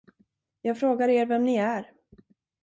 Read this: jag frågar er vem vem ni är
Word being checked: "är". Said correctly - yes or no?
yes